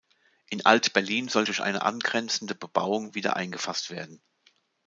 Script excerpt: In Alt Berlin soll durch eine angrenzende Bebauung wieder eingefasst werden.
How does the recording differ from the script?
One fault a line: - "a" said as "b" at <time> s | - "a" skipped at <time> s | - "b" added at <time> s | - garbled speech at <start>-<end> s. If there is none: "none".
none